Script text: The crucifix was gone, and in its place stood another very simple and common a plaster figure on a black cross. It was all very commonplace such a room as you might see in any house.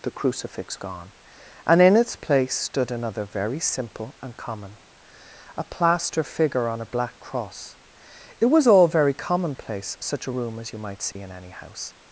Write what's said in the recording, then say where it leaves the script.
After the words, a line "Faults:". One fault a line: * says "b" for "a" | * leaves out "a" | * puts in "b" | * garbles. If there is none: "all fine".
The crucifix gone, and in its place stood another very simple and common a plaster figure on a black cross. It was all very commonplace such a room as you might see in any house.
Faults:
* leaves out "was"